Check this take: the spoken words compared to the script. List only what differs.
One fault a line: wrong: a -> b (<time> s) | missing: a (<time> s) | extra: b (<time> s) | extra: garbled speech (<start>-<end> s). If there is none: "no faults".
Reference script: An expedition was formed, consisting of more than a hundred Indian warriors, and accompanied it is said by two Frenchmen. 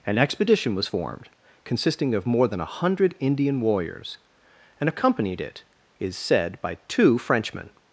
no faults